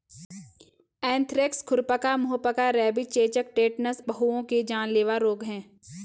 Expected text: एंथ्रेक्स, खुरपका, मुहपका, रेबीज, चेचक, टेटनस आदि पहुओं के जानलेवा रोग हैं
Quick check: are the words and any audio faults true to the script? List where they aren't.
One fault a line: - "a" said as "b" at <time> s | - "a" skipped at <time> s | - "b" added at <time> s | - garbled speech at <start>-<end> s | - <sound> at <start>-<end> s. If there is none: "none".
- "आदि" skipped at 4.0 s